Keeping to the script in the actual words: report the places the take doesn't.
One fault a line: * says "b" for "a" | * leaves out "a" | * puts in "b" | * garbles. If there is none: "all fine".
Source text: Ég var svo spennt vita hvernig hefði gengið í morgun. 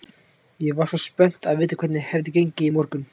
* puts in "að"